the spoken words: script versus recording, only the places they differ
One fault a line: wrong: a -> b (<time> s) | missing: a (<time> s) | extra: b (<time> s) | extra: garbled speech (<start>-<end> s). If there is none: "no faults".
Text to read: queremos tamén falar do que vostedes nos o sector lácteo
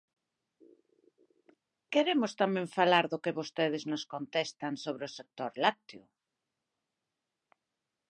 extra: contestan sobre (4.1 s)